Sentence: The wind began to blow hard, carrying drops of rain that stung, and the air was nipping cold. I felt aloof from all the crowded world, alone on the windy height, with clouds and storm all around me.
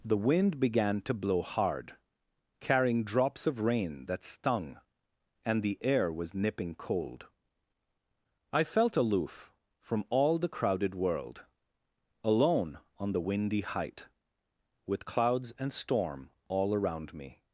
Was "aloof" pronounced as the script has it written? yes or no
yes